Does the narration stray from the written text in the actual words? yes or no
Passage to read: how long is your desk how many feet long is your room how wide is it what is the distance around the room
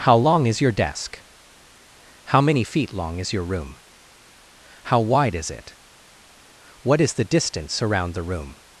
no